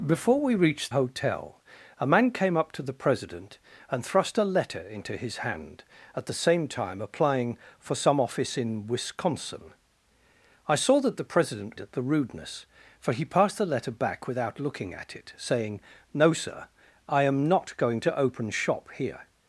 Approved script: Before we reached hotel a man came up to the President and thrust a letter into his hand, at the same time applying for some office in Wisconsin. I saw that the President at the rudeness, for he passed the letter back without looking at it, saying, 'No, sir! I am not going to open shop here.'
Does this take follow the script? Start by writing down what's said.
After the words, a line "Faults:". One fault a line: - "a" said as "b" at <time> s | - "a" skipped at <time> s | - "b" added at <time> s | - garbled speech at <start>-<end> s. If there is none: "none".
Before we reached hotel a man came up to the President and thrust a letter into his hand, at the same time applying for some office in Wisconsin. I saw that the President at the rudeness, for he passed the letter back without looking at it, saying, 'No, sir! I am not going to open shop here.'
Faults:
none